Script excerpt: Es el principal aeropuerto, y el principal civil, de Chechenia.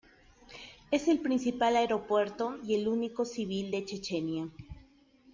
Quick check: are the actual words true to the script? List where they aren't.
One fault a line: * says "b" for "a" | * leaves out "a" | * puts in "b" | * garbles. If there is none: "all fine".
* says "único" for "principal"